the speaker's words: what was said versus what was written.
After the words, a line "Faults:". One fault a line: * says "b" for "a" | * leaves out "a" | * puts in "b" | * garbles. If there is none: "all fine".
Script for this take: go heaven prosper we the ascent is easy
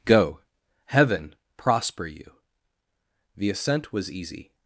go heaven prosper you the ascent was easy
Faults:
* says "you" for "we"
* says "was" for "is"